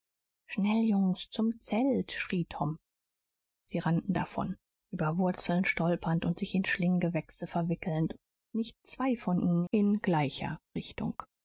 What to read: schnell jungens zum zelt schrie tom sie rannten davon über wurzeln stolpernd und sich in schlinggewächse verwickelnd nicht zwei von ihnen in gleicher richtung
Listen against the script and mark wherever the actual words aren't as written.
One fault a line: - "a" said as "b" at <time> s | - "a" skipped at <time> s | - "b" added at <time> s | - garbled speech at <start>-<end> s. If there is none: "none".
none